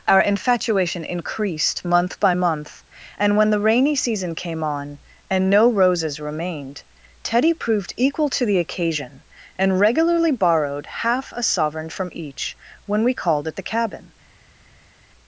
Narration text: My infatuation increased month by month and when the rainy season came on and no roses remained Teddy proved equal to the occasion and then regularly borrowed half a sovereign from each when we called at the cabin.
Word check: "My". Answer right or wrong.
wrong